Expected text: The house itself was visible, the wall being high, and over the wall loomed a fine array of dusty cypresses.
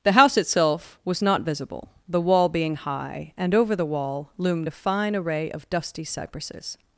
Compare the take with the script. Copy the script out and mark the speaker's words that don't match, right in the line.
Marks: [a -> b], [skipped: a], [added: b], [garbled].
The house itself was [added: not] visible, the wall being high, and over the wall loomed a fine array of dusty cypresses.